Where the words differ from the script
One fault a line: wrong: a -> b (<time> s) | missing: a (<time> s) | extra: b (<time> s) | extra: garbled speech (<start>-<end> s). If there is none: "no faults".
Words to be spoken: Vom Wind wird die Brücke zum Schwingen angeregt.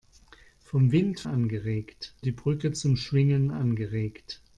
wrong: wird -> angeregt (1.2 s)